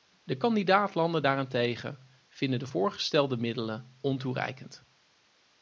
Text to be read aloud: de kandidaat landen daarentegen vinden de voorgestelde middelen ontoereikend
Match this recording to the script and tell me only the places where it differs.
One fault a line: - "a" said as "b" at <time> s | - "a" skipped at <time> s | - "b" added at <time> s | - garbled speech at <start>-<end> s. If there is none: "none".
none